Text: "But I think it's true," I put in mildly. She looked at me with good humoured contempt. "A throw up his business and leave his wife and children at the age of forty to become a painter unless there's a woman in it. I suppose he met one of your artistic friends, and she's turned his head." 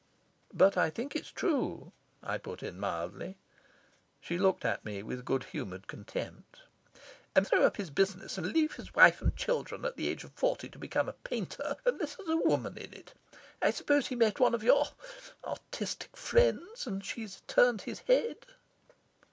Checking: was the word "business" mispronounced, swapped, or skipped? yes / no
no